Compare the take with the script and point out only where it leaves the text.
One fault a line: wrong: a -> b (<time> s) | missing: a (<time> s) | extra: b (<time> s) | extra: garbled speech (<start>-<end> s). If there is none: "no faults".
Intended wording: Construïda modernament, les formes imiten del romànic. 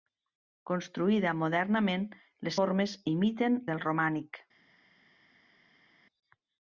no faults